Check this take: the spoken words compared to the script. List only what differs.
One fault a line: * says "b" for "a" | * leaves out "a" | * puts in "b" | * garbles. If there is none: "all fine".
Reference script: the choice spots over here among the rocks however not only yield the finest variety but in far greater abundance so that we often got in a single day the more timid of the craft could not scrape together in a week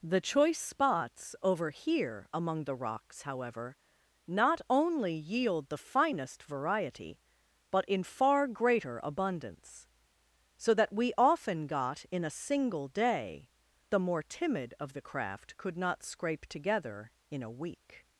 all fine